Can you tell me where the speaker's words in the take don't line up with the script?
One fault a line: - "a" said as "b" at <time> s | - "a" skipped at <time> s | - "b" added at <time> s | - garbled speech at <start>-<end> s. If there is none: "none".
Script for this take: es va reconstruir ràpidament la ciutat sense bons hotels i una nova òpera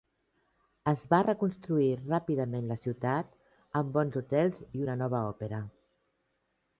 - "sense" said as "amb" at 3.8 s